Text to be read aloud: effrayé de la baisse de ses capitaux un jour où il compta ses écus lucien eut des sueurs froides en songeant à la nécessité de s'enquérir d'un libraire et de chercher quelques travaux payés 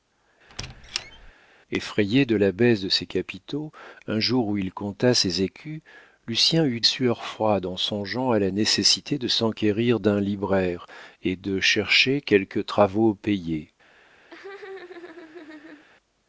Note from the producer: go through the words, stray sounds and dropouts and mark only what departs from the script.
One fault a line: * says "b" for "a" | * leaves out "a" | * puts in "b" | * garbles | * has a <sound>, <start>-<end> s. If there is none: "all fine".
* has a squeak, 0.5-1.3 s
* leaves out "des"
* has a laugh, 14.3-15.9 s